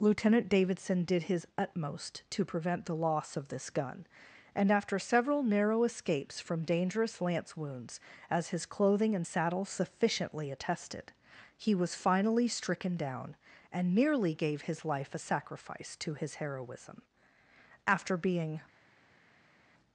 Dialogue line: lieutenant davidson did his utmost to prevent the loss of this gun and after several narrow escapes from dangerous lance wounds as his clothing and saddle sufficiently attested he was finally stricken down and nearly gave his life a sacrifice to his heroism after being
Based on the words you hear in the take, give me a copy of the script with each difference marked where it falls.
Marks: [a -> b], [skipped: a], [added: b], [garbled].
lieutenant davidson did his utmost to prevent the loss of this gun and after several narrow escapes from dangerous lance wounds as his clothing and saddle sufficiently attested he was finally stricken down and nearly gave his life a sacrifice to his heroism after being